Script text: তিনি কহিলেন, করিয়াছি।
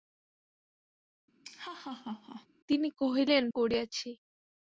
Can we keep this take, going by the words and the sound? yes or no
no